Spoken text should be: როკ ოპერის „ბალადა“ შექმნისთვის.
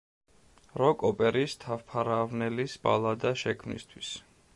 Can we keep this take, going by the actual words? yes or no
no